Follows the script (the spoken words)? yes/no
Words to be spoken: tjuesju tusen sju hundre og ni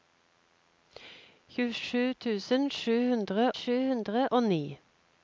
no